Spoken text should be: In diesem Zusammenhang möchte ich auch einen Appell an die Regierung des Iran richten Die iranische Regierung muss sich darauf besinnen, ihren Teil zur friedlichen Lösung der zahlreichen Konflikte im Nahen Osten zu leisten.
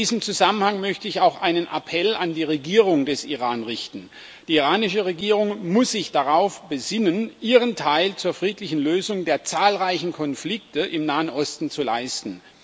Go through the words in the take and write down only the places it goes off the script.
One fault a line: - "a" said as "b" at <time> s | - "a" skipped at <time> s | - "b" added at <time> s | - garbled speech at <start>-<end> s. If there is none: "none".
none